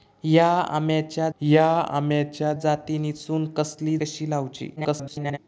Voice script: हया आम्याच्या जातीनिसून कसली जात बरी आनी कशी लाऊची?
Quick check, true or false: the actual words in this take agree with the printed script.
false